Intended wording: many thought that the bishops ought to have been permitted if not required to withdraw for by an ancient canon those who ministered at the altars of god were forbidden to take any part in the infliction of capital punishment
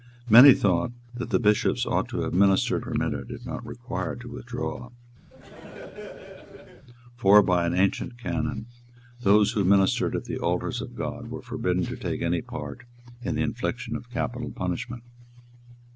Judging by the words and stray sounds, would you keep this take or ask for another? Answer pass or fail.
fail